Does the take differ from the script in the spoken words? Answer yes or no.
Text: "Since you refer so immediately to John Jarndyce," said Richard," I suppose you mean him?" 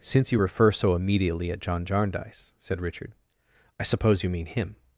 yes